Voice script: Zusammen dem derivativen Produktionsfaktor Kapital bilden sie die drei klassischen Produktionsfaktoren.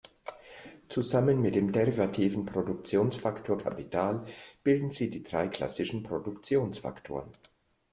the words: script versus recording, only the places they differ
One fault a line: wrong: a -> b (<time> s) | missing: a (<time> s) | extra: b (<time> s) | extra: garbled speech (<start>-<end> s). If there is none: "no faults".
extra: mit (1.4 s)